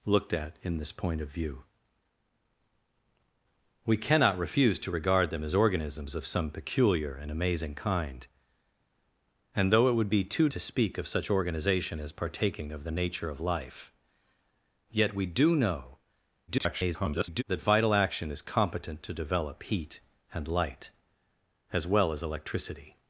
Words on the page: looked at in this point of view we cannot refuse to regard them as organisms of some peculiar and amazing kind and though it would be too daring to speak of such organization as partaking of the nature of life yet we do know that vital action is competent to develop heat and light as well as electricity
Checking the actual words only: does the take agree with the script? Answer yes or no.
no